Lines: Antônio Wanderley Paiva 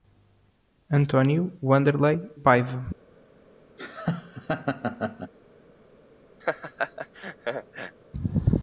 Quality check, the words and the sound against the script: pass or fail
fail